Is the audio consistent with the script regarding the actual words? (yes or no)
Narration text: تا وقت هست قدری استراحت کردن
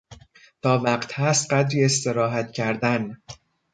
yes